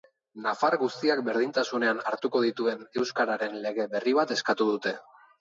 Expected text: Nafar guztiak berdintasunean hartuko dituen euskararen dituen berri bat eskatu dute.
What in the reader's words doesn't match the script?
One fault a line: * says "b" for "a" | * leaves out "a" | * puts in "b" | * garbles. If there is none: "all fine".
* says "lege" for "dituen"